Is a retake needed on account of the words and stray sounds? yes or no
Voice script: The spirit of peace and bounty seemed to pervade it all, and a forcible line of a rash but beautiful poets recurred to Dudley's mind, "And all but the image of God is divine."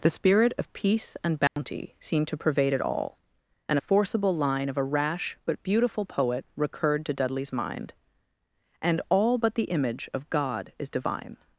yes